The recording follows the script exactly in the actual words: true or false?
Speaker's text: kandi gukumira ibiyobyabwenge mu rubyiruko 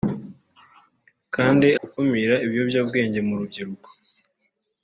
true